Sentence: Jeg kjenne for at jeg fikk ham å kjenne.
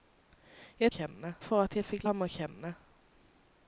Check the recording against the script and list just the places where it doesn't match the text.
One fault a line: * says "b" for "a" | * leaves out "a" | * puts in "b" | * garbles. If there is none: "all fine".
all fine